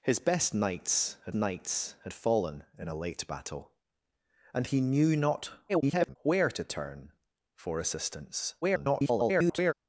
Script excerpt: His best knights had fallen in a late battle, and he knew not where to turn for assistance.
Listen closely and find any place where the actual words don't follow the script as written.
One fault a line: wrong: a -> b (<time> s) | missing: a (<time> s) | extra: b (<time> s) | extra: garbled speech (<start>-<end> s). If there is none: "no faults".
extra: knights had (1.3 s)
extra: garbled speech (5.7-6.2 s)
extra: garbled speech (8.6-9.7 s)